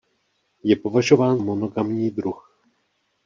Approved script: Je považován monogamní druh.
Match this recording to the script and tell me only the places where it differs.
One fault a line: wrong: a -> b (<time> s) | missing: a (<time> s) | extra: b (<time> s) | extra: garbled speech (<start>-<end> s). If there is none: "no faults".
no faults